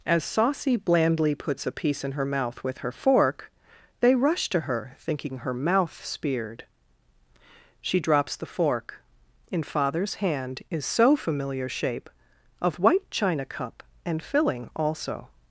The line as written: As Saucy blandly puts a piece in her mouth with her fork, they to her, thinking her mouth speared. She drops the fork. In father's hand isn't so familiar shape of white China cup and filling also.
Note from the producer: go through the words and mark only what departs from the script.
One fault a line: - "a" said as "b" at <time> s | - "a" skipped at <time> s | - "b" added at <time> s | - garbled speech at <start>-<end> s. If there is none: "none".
- "rush" added at 4.2 s
- "isn't" said as "is" at 10.7 s